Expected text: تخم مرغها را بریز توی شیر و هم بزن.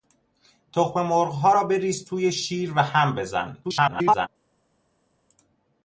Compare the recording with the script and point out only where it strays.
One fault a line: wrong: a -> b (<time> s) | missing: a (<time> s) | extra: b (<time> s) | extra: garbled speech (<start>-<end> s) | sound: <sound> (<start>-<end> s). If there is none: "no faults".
extra: garbled speech (3.6-4.3 s)